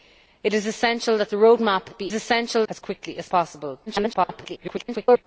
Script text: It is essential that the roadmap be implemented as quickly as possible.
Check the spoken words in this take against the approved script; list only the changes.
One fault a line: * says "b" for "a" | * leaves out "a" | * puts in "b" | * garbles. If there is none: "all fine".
* says "essential" for "implemented"
* garbles